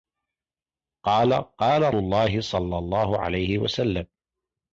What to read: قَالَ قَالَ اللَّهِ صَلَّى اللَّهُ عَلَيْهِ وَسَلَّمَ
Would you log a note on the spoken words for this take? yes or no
no